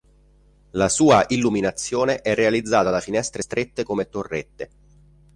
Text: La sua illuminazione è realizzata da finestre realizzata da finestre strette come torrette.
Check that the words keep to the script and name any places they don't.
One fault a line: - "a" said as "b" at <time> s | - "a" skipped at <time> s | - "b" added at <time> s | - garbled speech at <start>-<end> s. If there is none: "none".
- "realizzata da finestre" skipped at 3.4 s